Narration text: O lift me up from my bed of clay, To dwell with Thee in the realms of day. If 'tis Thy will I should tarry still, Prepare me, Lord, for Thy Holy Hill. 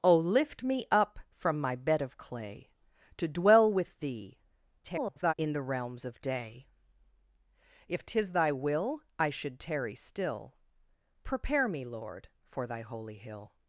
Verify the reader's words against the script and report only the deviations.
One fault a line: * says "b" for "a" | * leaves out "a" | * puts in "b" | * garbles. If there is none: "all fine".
* garbles